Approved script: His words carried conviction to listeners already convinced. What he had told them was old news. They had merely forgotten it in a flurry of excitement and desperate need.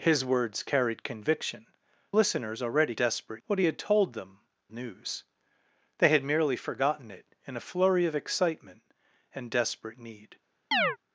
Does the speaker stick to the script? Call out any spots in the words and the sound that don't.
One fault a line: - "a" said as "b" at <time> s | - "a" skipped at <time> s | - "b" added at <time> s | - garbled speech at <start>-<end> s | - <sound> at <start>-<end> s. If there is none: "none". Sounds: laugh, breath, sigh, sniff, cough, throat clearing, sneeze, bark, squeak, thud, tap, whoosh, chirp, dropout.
- "to" skipped at 1.7 s
- "convinced" said as "desperate" at 2.9 s
- "was old" skipped at 4.4 s
- chirp at 10.7-11.0 s